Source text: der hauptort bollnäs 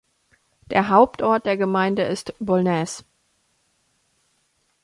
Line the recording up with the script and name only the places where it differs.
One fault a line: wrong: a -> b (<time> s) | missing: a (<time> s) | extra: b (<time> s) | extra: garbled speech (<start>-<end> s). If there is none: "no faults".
extra: der gemeinde ist (1.4 s)